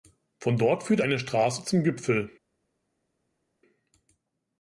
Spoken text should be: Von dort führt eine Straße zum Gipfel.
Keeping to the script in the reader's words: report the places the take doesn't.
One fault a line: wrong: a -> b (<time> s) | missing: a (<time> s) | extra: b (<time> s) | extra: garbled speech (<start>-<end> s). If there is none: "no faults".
no faults